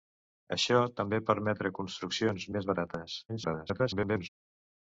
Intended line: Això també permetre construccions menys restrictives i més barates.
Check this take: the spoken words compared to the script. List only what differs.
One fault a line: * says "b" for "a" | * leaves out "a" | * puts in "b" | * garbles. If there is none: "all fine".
* leaves out "menys restrictives"
* garbles